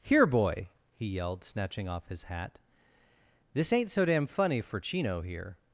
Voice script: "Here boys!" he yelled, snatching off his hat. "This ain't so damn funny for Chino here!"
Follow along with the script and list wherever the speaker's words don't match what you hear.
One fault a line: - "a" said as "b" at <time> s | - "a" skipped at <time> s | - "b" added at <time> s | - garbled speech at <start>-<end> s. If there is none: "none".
- "boys" said as "boy" at 0.2 s